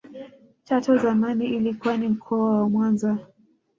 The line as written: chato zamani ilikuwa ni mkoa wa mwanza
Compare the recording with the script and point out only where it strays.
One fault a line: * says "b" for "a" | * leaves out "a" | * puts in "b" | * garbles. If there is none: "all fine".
all fine